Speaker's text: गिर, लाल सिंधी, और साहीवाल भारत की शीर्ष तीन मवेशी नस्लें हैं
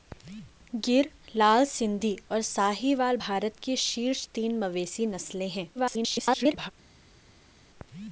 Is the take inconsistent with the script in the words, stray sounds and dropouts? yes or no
yes